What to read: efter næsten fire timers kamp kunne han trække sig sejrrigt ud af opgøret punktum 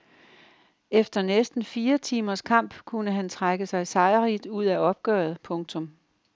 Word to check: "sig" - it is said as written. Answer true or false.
true